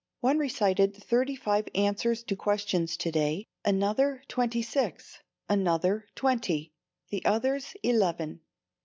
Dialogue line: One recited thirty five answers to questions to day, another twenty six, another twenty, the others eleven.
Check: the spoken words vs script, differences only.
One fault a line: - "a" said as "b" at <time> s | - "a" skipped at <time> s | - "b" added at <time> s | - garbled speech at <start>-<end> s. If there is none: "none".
none